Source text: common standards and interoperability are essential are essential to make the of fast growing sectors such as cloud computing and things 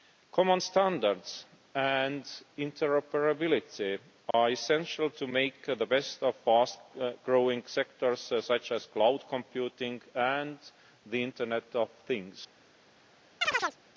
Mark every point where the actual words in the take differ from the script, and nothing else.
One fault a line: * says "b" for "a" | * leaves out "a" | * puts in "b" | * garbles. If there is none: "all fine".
* leaves out "are essential"
* puts in "best"
* puts in "the internet of"